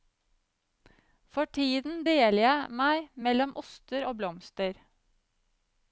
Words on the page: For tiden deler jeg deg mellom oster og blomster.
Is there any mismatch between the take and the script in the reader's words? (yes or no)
yes